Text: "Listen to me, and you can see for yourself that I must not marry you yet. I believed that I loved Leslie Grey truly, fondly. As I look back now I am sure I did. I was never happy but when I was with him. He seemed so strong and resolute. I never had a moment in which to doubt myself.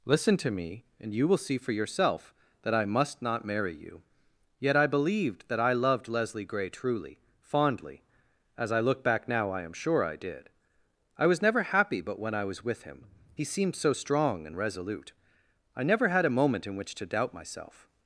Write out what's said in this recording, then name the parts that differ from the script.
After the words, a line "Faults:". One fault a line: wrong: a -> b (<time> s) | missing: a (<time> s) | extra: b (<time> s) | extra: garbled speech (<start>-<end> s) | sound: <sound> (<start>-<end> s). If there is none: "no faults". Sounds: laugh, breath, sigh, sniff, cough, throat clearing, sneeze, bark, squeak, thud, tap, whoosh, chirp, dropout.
"Listen to me, and you will see for yourself that I must not marry you yet. I believed that I loved Leslie Grey truly, fondly. As I look back now I am sure I did. I was never happy but when I was with him. He seemed so strong and resolute. I never had a moment in which to doubt myself.
Faults:
wrong: can -> will (1.3 s)